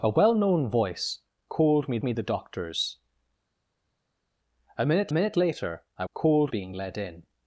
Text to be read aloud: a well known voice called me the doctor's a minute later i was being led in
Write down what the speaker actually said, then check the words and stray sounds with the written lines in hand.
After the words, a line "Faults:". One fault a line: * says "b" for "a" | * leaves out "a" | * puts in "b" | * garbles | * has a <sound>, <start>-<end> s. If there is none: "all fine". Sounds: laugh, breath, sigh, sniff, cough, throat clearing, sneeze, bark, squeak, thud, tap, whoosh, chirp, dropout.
a well known voice called me me the doctor's a minute minute later i called being led in
Faults:
* puts in "me"
* puts in "minute"
* says "called" for "was"